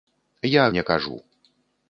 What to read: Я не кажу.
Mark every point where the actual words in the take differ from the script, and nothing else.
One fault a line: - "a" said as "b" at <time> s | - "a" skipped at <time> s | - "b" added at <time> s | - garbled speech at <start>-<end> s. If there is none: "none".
none